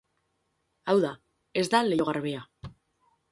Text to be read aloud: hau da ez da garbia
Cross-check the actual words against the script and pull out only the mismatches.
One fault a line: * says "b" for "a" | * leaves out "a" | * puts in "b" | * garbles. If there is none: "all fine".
* puts in "leiho"